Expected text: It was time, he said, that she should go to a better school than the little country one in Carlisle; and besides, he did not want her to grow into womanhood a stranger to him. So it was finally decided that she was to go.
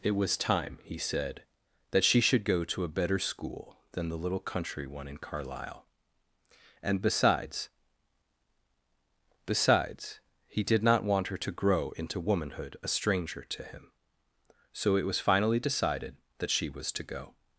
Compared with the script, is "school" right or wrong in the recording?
right